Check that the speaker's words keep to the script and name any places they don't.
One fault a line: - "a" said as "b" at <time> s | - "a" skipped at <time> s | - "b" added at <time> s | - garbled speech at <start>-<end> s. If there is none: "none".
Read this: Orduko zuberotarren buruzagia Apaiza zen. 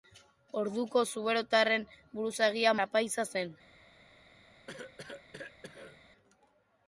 none